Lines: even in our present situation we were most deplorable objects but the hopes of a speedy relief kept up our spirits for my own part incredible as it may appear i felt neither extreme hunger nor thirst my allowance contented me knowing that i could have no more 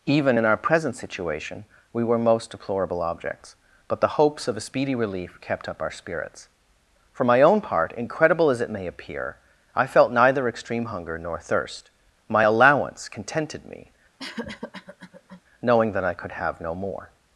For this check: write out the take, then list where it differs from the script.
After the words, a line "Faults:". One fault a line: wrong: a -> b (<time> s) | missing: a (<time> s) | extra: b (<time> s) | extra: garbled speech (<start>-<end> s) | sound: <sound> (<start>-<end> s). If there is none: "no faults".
even in our present situation we were most deplorable objects but the hopes of a speedy relief kept up our spirits for my own part incredible as it may appear i felt neither extreme hunger nor thirst my allowance contented me knowing that i could have no more
Faults:
sound: cough (14.2-15.4 s)